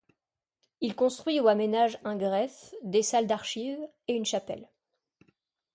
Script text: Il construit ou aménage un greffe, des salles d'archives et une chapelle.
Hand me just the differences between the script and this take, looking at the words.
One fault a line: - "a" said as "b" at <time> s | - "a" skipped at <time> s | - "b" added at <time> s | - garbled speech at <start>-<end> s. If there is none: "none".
none